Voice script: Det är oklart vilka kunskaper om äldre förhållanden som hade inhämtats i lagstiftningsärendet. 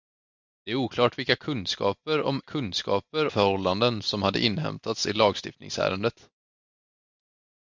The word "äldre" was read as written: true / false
false